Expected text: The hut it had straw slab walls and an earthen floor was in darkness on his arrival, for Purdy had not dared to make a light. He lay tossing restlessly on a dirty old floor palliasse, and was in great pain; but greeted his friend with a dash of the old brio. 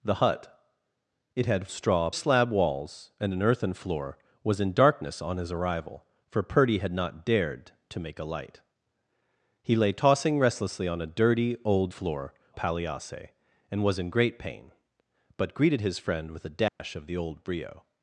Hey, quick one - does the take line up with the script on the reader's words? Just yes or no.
yes